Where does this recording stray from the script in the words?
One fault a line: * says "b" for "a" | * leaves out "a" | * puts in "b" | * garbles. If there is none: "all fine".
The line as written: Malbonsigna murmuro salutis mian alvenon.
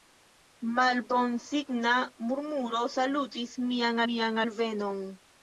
* puts in "mian"